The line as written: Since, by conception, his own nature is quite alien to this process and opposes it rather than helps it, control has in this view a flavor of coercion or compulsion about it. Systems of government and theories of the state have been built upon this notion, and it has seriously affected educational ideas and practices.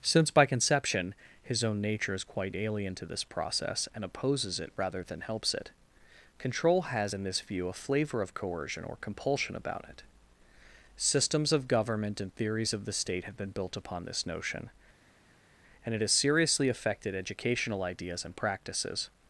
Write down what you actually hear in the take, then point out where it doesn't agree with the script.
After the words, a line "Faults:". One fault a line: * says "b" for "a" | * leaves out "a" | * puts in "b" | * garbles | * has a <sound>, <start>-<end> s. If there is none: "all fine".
Since, by conception, his own nature is quite alien to this process and opposes it rather than helps it, control has in this view a flavor of coercion or compulsion about it. Systems of government and theories of the state have been built upon this notion, and it has seriously affected educational ideas and practices.
Faults:
all fine